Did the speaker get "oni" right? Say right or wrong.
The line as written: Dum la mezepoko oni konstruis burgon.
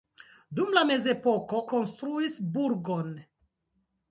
wrong